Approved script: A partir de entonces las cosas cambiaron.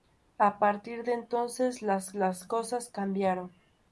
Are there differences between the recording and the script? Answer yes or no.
yes